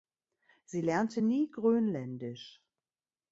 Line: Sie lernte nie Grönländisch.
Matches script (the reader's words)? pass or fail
pass